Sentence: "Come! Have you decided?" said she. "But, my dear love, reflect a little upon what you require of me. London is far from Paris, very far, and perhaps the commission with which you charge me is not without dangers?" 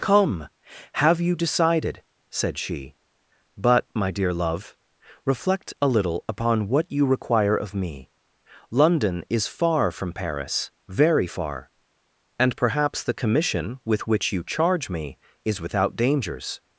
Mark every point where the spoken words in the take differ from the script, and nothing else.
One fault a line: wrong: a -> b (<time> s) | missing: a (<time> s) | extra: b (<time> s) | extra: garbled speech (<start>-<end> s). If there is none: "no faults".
missing: not (15.6 s)